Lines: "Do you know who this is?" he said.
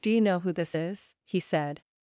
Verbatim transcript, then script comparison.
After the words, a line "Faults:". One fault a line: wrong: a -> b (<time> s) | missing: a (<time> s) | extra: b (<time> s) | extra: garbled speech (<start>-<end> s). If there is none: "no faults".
"Do you know who this is?" he said.
Faults:
no faults